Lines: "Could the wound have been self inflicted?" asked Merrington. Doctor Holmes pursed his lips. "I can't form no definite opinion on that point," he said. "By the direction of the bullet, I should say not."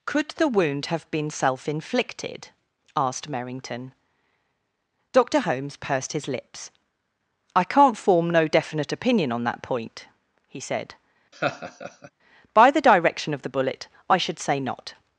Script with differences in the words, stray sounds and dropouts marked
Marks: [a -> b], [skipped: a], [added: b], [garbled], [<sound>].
"Could the wound have been self inflicted?" asked Merrington. Doctor Holmes pursed his lips. "I can't form no definite opinion on that point," he said. [laugh] "By the direction of the bullet, I should say not."